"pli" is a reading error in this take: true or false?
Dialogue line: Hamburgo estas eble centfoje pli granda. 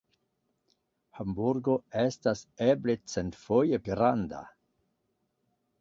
true